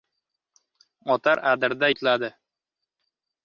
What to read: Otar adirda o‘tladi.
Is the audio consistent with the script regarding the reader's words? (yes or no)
yes